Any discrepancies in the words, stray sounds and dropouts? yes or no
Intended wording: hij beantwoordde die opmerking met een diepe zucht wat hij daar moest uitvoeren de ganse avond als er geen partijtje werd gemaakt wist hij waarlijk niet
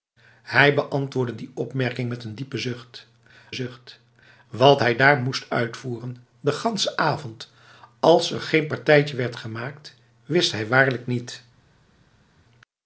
yes